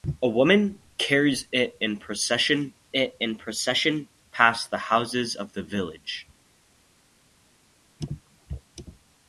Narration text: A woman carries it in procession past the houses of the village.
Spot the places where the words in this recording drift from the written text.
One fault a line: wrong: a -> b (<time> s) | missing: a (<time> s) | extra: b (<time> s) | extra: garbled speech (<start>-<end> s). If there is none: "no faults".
extra: it in procession (2.9 s)